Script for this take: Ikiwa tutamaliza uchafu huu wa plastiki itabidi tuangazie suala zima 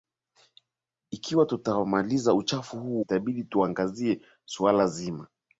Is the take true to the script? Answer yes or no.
no